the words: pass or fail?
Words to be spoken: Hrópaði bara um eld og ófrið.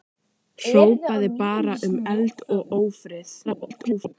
fail